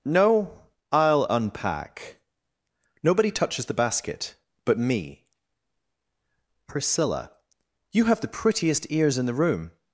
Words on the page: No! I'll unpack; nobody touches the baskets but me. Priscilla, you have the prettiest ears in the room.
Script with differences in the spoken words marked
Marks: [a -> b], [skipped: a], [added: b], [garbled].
No! I'll unpack; nobody touches the [baskets -> basket] but me. Priscilla, you have the prettiest ears in the room.